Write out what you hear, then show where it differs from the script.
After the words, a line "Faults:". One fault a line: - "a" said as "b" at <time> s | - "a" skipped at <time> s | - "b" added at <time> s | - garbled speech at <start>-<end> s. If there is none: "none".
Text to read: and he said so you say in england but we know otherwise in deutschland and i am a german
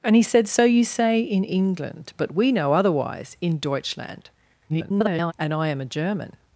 and he said so you say in england but we know otherwise in deutschland [garbled] and i am a german
Faults:
- garbled speech at 4.7-5.3 s